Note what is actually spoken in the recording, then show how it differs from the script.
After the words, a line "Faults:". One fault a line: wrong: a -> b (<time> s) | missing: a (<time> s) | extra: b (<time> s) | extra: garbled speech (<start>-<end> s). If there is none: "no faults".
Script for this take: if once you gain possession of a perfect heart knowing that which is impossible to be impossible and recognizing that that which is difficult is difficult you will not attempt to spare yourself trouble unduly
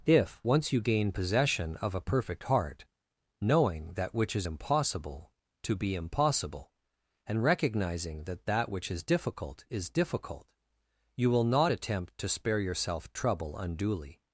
if once you gain possession of a perfect heart knowing that which is impossible to be impossible and recognizing that that which is difficult is difficult you will not attempt to spare yourself trouble unduly
Faults:
no faults